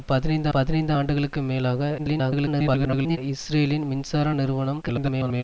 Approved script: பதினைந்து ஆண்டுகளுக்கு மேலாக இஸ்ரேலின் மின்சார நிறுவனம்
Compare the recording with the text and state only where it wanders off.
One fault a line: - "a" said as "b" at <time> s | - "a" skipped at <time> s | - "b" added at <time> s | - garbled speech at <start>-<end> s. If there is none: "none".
- "பதினைந்து" added at 0.5 s
- garbled speech at 2.0-3.2 s
- garbled speech at 4.8-5.4 s